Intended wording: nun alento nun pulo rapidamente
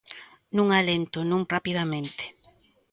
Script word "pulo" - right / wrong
wrong